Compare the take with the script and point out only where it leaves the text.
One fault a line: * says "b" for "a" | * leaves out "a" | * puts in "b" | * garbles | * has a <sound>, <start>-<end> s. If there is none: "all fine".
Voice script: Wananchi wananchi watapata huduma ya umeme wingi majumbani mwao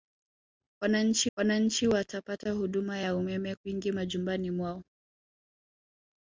all fine